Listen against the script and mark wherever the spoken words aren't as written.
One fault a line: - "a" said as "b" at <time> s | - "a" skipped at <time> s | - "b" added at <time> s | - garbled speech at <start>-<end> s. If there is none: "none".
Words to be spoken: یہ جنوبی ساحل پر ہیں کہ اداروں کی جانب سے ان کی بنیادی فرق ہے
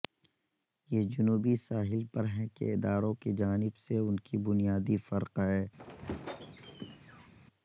none